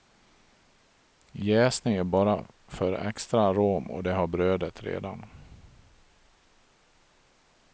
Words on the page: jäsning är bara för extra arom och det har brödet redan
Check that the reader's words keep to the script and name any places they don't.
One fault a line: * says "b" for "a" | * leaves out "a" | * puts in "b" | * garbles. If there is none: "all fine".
all fine